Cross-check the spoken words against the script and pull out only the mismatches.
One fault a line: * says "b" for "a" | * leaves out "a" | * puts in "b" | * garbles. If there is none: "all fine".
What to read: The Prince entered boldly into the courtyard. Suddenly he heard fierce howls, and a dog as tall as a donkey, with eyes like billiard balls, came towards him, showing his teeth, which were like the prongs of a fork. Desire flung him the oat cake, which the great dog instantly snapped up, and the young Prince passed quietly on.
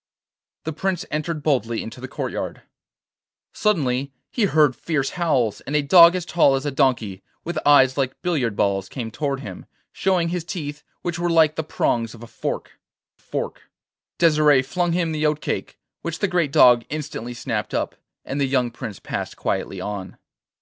* puts in "fork"